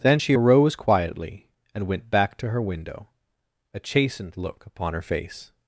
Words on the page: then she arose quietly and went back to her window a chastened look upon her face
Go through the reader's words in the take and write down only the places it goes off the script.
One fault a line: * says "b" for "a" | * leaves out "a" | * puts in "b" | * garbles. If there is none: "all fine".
all fine